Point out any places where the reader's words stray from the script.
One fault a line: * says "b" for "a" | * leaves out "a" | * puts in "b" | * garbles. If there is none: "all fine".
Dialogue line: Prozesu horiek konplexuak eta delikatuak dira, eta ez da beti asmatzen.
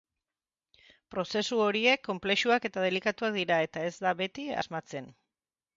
all fine